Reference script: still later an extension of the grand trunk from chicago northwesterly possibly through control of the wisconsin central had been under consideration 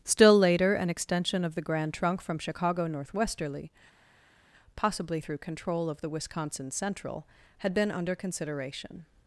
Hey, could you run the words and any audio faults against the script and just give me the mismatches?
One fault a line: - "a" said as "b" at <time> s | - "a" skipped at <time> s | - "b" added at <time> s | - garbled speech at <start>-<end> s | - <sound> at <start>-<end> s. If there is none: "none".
none